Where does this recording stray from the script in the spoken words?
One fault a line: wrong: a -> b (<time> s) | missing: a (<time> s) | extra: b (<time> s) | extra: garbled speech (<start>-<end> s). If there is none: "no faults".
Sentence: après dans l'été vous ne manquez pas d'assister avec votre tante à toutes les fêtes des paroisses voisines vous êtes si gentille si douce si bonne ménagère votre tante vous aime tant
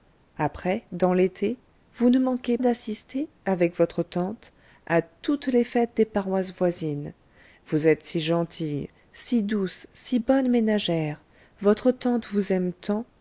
missing: pas (2.6 s)